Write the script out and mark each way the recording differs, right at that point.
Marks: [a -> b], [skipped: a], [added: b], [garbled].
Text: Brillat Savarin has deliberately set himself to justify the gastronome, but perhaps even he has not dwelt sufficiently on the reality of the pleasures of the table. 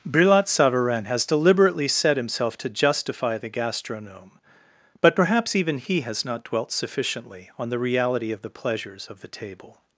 Brillat Savarin has deliberately set himself to justify the gastronome, but perhaps even he has not dwelt sufficiently on the reality of the pleasures of the table.